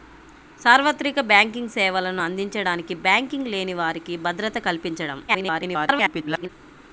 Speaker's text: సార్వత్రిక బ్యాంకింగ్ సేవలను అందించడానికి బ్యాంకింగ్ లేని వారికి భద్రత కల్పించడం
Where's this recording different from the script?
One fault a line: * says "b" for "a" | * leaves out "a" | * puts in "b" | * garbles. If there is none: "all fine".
* garbles